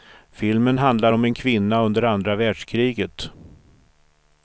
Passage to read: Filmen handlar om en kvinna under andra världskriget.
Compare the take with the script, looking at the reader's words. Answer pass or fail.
pass